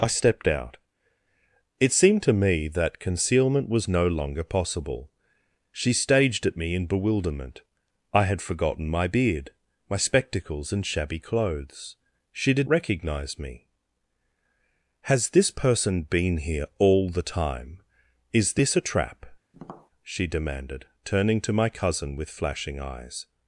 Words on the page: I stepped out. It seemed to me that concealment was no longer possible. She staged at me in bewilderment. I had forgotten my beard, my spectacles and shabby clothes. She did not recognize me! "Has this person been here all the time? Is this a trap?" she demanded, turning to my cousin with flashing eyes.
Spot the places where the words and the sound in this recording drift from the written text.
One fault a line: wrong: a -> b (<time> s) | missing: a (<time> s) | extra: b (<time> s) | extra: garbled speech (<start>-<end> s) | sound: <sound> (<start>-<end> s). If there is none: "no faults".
missing: not (12.7 s)
sound: tap (19.5-19.9 s)